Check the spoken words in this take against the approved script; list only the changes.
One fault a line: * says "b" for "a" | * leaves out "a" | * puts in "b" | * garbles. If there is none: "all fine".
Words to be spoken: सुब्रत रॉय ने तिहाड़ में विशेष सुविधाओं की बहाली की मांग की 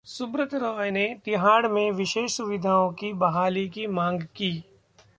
all fine